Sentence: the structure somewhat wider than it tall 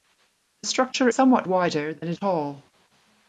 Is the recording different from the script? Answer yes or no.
no